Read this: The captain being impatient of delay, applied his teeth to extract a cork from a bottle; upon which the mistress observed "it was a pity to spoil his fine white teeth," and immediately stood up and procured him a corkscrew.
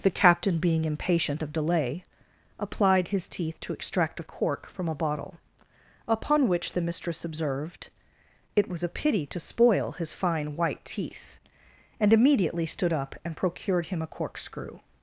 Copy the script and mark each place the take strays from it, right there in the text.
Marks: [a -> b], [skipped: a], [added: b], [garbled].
The captain being impatient of delay, applied his teeth to extract a cork from a bottle; upon which the mistress observed "it was a pity to spoil his fine white teeth," and immediately stood up and procured him a corkscrew.